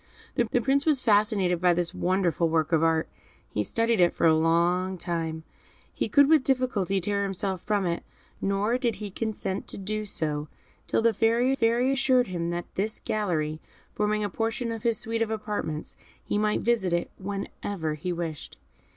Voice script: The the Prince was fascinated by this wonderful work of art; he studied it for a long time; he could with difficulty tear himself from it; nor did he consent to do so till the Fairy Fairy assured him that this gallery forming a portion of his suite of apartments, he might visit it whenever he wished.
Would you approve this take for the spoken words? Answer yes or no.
yes